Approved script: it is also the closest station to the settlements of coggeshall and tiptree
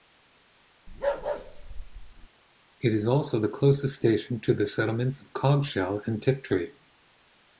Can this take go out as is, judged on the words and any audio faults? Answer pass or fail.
fail